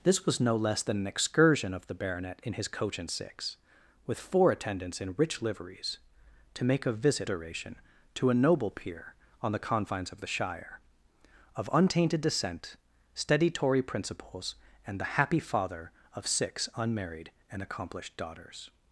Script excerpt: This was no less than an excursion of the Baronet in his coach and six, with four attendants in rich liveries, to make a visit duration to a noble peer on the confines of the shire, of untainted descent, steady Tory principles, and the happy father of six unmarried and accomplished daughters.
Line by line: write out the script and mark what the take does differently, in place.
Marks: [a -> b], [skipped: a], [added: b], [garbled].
This was no less than an excursion of the Baronet in his coach and six, with four attendants in rich liveries, to make a visit duration to a noble peer on the confines of the shire, of untainted descent, steady Tory principles, and the happy father of six unmarried and accomplished daughters.